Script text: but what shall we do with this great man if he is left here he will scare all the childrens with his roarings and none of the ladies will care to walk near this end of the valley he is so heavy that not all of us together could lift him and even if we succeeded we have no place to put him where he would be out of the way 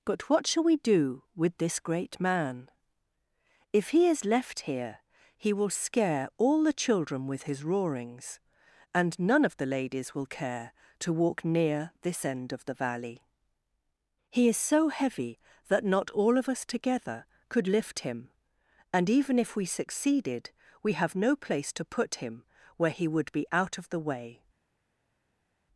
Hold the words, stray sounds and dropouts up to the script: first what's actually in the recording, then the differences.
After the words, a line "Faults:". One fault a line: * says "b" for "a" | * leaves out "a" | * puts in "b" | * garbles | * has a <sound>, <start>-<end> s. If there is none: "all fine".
but what shall we do with this great man if he is left here he will scare all the children with his roarings and none of the ladies will care to walk near this end of the valley he is so heavy that not all of us together could lift him and even if we succeeded we have no place to put him where he would be out of the way
Faults:
* says "children" for "childrens"